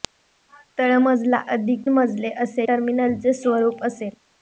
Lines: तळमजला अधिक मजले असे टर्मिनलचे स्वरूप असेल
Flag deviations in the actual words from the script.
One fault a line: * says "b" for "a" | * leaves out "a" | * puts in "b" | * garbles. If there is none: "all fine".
all fine